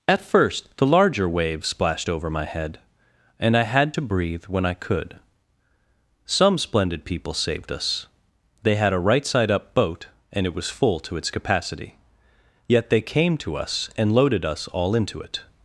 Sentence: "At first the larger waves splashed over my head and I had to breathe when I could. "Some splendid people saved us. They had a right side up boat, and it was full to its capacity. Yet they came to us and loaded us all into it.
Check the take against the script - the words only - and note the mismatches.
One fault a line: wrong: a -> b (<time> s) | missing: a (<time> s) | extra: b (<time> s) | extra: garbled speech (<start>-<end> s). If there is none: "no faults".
no faults